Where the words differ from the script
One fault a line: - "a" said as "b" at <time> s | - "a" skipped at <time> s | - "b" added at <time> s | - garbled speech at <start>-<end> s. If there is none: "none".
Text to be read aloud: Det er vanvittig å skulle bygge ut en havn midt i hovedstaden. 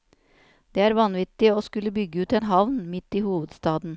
none